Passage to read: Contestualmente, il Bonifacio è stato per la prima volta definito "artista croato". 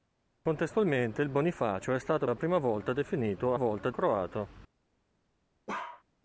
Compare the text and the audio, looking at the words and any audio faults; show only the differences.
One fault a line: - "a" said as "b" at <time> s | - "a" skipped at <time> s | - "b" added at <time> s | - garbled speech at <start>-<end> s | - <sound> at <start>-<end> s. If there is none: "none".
- "per" skipped at 2.3 s
- "artista" said as "volta" at 3.5 s
- bark at 5.7-6.0 s